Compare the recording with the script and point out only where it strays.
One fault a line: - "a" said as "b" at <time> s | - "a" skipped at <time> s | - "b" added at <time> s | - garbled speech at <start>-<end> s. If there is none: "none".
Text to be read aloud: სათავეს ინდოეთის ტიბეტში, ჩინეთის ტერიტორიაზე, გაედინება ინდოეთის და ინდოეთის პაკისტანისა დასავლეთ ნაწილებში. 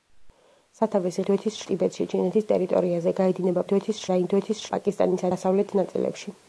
none